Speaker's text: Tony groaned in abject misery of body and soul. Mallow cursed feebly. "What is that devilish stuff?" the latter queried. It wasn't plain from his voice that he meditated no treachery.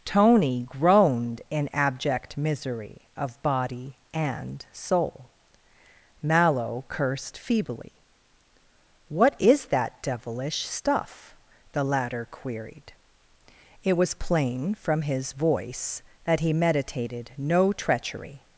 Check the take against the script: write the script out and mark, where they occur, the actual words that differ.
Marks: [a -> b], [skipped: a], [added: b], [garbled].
Tony groaned in abject misery of body and soul. Mallow cursed feebly. "What is that devilish stuff?" the latter queried. It [wasn't -> was] plain from his voice that he meditated no treachery.